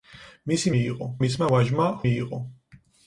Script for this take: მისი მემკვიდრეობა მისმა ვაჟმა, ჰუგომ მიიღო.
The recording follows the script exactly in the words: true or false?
false